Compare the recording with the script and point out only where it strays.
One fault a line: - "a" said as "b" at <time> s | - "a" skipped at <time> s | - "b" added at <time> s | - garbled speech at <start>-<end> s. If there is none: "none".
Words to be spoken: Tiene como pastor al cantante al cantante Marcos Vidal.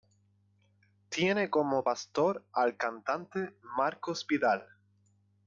- "al cantante" skipped at 3.6 s